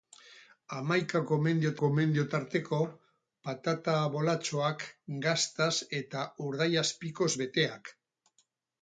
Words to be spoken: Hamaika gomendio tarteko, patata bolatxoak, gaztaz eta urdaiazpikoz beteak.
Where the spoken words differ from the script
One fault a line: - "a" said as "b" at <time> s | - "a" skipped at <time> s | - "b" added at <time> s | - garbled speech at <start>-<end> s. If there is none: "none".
- "gomendio" added at 1.8 s